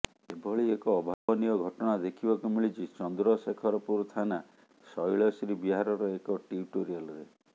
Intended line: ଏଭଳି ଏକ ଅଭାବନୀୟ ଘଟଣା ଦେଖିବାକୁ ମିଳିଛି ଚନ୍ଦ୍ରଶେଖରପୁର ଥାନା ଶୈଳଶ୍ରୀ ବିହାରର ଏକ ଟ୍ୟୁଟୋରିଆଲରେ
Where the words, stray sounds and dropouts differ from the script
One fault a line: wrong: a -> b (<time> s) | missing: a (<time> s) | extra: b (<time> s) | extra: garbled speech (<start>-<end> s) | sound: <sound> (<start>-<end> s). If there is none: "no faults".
sound: dropout (1.1-1.3 s)